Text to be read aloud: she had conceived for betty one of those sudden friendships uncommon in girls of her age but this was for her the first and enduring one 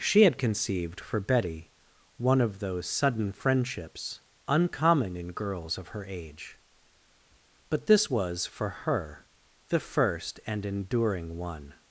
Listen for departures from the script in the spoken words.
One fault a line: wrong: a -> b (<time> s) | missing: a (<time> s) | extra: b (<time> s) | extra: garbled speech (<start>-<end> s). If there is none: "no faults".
no faults